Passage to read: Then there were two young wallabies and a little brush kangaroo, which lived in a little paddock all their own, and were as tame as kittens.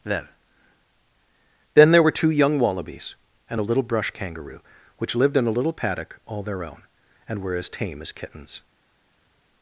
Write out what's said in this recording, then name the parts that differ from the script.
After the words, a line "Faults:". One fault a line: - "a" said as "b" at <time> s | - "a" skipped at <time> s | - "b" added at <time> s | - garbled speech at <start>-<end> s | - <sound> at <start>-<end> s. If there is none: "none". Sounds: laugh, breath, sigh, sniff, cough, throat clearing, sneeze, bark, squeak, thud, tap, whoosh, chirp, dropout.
Then then there were two young wallabies and a little brush kangaroo, which lived in a little paddock all their own, and were as tame as kittens.
Faults:
- "then" added at 1.7 s